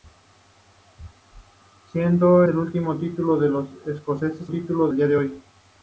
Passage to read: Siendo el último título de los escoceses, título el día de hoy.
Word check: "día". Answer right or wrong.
right